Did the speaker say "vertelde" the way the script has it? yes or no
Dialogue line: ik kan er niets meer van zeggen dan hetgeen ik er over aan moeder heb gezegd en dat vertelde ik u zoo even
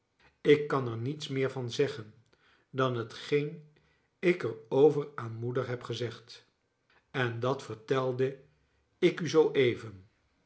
yes